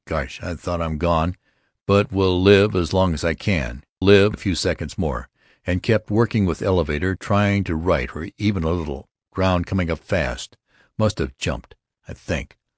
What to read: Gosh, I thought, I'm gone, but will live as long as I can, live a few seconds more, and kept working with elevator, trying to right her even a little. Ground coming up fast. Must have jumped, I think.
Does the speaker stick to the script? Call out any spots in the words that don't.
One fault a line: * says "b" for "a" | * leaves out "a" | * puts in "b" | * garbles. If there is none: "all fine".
all fine